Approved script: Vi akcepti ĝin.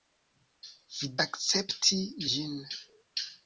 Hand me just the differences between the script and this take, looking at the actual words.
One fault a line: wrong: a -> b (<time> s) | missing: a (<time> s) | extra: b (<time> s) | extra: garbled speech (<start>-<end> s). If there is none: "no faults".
no faults